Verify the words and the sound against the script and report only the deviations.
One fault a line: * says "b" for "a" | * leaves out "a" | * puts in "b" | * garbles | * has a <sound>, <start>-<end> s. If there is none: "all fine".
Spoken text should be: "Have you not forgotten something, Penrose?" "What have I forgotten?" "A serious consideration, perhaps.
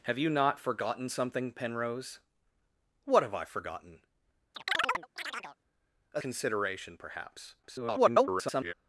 * has a chirp, 4.5-5.6 s
* leaves out "serious"
* garbles